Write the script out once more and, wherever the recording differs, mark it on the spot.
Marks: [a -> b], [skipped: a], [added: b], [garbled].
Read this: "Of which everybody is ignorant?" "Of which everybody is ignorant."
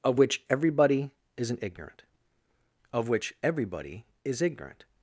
"Of which everybody [is -> isn't] ignorant?" "Of which everybody is ignorant."